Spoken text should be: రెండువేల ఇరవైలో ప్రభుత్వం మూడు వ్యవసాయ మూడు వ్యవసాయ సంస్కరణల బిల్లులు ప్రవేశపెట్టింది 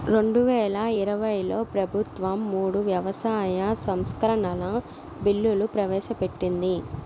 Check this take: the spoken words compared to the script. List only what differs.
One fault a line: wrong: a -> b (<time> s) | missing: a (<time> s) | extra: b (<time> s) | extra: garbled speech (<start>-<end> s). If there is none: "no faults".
missing: మూడు వ్యవసాయ (3.6 s)